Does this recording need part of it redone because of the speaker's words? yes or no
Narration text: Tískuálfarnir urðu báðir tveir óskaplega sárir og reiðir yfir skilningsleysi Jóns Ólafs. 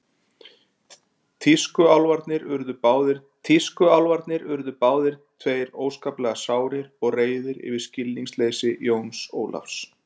yes